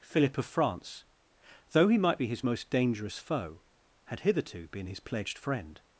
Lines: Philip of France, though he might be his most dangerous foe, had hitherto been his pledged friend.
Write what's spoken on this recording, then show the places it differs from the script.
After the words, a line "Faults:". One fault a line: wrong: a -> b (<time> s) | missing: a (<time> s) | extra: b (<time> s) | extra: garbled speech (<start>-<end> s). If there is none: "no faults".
Philip of France, though he might be his most dangerous foe, had hitherto been his pledged friend.
Faults:
no faults